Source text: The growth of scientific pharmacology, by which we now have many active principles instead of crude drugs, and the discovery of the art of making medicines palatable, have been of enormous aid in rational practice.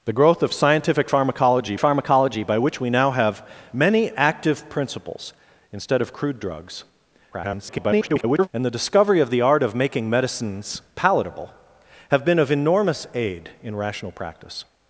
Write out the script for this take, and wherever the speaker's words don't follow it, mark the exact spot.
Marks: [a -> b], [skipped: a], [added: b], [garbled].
The growth of scientific pharmacology, [added: pharmacology] by which we now have many active principles instead of crude drugs, [garbled] and the discovery of the art of making medicines palatable, have been of enormous aid in rational practice.